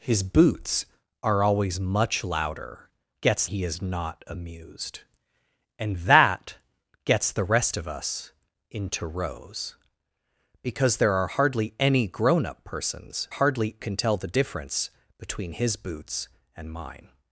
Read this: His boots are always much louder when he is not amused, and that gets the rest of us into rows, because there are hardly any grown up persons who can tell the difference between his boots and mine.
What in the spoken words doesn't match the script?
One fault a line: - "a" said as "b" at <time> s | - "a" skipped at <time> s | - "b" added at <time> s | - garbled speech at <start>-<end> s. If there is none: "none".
- "when" said as "gets" at 3.2 s
- "who" said as "hardly" at 13.3 s